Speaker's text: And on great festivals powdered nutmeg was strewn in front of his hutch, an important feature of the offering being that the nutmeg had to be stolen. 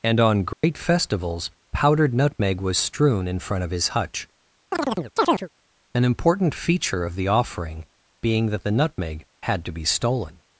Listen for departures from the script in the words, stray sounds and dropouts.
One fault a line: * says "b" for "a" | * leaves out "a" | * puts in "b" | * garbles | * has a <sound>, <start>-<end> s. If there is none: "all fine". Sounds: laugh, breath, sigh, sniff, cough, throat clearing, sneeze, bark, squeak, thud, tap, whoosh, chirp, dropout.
* has a dropout, 0.5-0.6 s
* has a chirp, 4.7-5.5 s